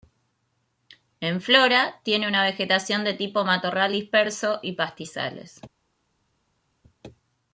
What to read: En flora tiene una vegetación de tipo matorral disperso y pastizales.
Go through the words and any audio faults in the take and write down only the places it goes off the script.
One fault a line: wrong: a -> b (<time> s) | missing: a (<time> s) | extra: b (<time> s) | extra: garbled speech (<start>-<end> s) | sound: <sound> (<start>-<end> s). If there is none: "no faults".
no faults